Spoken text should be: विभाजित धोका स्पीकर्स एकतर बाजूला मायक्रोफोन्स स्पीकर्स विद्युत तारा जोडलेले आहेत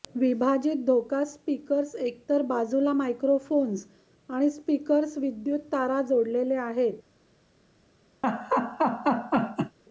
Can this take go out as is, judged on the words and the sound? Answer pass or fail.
fail